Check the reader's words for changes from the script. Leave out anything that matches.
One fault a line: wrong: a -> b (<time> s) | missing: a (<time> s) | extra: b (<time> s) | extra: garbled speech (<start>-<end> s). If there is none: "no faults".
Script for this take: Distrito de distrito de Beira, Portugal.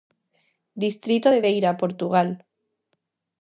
missing: distrito de (1.4 s)